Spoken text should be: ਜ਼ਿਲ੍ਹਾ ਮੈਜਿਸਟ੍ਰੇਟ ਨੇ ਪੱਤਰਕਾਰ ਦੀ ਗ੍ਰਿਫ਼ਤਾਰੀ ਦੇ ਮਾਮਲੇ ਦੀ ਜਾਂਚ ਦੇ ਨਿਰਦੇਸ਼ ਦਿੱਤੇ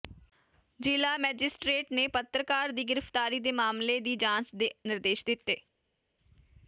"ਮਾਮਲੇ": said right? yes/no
yes